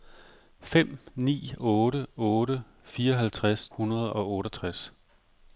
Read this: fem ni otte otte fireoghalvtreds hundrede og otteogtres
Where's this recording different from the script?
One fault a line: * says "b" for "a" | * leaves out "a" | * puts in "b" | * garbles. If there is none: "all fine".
all fine